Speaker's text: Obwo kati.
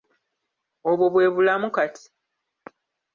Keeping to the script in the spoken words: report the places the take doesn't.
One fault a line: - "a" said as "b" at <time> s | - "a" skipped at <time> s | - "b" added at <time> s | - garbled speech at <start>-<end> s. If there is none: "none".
- "bwe bulamu" added at 1.1 s